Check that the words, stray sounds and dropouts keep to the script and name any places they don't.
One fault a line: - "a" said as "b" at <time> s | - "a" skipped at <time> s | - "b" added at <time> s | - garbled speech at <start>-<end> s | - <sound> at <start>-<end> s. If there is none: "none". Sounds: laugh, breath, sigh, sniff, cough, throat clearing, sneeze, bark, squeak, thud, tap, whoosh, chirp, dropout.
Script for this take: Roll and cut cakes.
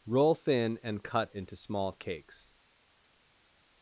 - "thin" added at 0.3 s
- "into small" added at 1.3 s